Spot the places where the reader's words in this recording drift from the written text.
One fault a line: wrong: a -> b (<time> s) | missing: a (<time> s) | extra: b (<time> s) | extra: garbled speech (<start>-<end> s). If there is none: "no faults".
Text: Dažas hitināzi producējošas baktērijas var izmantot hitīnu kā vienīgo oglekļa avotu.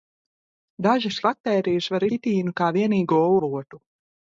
missing: hitināzi producējošas (1.2 s)
missing: izmantot (2.1 s)
missing: oglekļa (3.2 s)